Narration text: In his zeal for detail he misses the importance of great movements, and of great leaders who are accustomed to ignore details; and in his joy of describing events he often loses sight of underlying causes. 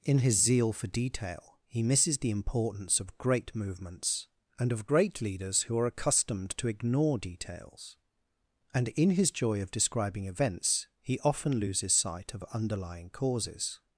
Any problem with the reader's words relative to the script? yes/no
no